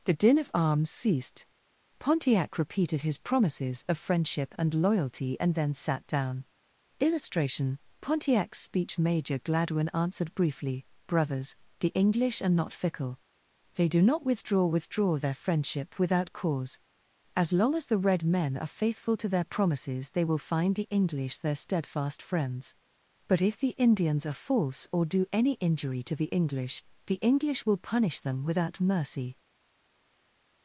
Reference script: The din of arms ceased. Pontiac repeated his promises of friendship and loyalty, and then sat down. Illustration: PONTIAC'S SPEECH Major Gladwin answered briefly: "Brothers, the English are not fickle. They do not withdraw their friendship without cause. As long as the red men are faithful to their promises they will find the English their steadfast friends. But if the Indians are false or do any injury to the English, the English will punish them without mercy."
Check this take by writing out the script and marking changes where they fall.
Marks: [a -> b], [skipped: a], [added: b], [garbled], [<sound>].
The din of arms ceased. Pontiac repeated his promises of friendship and loyalty, and then sat down. Illustration: PONTIAC'S SPEECH Major Gladwin answered briefly: "Brothers, the English are not fickle. They do not withdraw [added: withdraw] their friendship without cause. As long as the red men are faithful to their promises they will find the English their steadfast friends. But if the Indians are false or do any injury to the English, the English will punish them without mercy."